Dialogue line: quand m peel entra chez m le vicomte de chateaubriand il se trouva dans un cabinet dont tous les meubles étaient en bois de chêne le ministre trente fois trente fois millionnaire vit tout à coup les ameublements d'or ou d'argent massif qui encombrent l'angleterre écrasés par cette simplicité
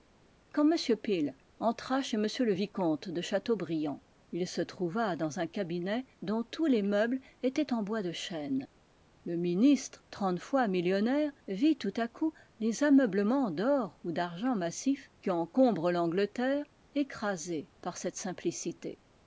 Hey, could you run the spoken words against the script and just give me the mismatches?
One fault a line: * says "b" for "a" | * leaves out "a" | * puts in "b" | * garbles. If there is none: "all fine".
* leaves out "trente fois"